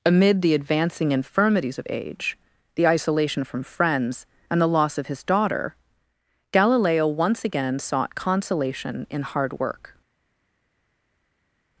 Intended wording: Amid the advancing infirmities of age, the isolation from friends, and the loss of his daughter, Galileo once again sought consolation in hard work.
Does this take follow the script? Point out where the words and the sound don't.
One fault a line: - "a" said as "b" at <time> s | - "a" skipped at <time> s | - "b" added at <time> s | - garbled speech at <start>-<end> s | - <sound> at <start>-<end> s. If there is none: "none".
none